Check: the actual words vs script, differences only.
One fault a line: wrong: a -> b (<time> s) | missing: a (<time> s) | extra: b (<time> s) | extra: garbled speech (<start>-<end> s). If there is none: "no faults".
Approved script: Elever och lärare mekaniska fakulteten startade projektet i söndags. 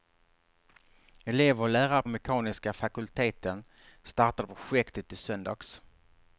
no faults